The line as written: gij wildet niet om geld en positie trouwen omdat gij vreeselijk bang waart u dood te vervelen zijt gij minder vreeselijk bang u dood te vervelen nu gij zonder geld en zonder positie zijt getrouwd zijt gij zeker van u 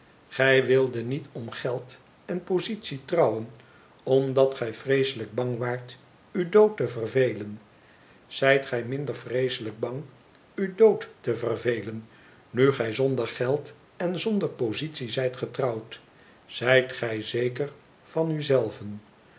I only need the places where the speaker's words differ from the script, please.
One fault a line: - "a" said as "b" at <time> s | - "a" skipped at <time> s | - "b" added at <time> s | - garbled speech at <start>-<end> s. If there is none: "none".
none